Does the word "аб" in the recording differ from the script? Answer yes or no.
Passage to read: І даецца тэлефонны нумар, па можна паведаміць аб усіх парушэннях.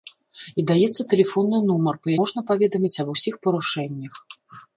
no